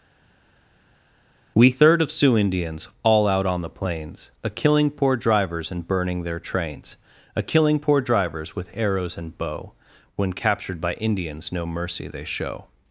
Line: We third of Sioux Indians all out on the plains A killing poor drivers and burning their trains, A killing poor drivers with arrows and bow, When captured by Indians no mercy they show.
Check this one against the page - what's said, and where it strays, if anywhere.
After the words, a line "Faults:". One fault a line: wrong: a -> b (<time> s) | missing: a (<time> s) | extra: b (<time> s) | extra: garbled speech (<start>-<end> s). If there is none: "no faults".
We third of Sioux Indians all out on the plains A killing poor drivers and burning their trains, A killing poor drivers with arrows and bow, When captured by Indians no mercy they show.
Faults:
no faults